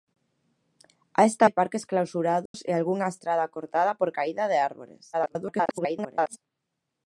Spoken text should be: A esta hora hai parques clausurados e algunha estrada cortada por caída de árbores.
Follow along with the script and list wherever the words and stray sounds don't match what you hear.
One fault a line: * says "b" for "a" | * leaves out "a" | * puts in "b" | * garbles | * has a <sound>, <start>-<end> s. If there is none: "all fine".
* leaves out "hora"
* has a dropout, 2.5-2.5 s
* garbles